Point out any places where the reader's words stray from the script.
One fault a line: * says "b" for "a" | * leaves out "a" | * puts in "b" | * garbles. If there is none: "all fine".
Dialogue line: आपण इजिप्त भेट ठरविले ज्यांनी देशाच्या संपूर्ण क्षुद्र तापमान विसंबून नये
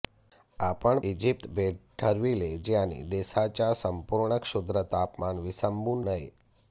all fine